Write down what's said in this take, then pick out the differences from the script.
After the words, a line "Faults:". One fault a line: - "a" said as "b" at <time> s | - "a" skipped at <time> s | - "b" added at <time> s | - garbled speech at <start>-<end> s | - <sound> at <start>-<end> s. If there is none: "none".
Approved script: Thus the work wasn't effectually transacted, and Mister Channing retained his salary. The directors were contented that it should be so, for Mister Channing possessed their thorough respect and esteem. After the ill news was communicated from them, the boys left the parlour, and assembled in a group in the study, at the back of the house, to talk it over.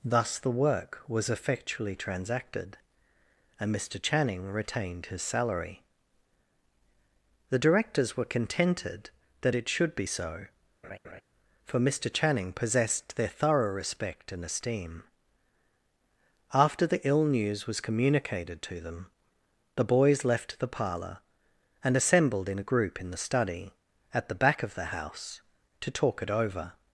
Thus the work was effectually transacted, and Mister Channing retained his salary. The directors were contented that it should be so, for Mister Channing possessed their thorough respect and esteem. After the ill news was communicated to them, the boys left the parlour, and assembled in a group in the study, at the back of the house, to talk it over.
Faults:
- "wasn't" said as "was" at 1.1 s
- laugh at 10.8-11.2 s
- "from" said as "to" at 18.6 s